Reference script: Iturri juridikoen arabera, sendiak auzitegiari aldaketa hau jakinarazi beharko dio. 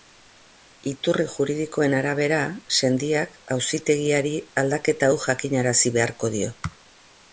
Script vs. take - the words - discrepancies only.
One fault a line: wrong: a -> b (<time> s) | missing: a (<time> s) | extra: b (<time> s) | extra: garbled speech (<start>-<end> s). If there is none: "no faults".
no faults